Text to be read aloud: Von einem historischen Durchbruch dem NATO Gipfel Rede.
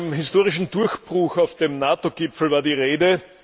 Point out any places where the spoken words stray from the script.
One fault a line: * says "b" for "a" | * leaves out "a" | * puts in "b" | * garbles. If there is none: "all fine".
* puts in "auf"
* puts in "war die"